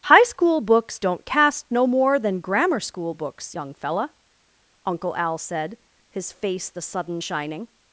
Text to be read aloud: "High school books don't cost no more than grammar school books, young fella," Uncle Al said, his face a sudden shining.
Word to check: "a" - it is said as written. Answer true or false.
false